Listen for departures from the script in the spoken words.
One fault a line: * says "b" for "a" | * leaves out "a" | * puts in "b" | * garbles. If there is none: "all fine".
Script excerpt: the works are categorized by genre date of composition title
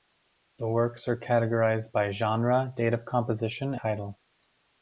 all fine